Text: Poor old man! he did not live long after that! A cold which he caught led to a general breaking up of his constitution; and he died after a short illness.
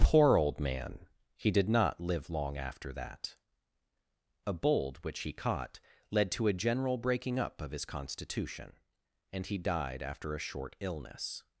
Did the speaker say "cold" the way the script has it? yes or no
no